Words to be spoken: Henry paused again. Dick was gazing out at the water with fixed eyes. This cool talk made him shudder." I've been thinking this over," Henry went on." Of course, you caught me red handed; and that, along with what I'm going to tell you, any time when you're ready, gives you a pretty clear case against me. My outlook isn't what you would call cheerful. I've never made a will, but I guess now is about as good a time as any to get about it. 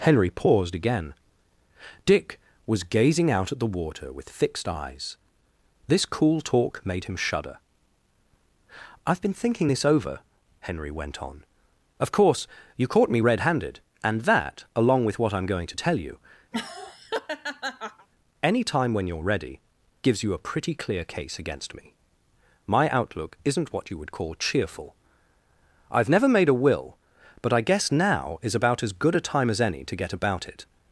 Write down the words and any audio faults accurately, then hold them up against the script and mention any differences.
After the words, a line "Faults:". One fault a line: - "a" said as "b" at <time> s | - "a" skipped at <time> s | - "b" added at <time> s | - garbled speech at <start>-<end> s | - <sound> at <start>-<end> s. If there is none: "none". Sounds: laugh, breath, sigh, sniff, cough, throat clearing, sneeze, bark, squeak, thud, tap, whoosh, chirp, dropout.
Henry paused again. Dick was gazing out at the water with fixed eyes. This cool talk made him shudder." I've been thinking this over," Henry went on." Of course, you caught me red handed; and that, along with what I'm going to tell you, any time when you're ready, gives you a pretty clear case against me. My outlook isn't what you would call cheerful. I've never made a will, but I guess now is about as good a time as any to get about it.
Faults:
- laugh at 16.5-18.1 s